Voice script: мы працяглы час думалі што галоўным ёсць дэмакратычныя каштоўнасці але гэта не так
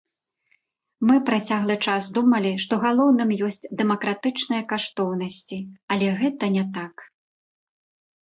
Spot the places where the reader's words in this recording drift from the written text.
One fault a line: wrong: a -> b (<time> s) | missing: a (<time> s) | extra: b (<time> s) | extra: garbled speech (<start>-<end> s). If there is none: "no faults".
no faults